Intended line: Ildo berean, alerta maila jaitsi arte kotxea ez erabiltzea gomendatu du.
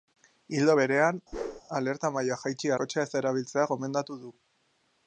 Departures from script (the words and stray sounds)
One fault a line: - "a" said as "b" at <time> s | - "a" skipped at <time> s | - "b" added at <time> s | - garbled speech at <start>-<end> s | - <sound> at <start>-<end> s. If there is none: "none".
- whoosh at 1.3-1.6 s
- "arte" skipped at 2.7 s